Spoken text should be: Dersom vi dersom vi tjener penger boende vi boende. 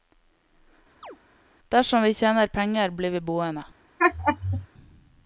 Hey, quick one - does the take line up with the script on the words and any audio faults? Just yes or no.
no